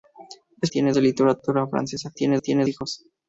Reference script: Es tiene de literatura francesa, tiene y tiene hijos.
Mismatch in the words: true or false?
false